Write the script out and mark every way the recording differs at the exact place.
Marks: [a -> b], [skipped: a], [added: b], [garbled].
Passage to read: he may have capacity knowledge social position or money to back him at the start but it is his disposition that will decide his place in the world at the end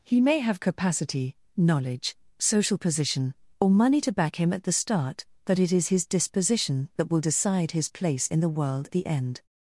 he may have capacity knowledge social position or money to back him at the start but it is his disposition that will decide his place in the world [skipped: at] the end